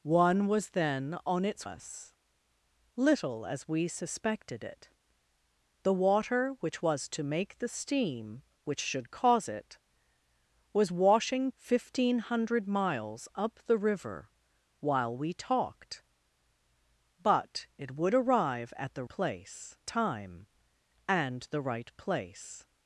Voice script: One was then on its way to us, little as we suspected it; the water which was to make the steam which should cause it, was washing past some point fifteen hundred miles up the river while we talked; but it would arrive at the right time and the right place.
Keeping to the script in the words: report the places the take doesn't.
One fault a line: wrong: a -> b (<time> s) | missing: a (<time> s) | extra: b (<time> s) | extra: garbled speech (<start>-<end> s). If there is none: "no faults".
missing: way to (1.7 s)
missing: past some point (11.5 s)
wrong: right -> place (19.1 s)